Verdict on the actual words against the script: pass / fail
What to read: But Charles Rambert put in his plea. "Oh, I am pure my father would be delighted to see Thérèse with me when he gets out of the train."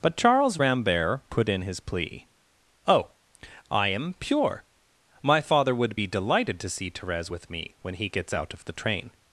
pass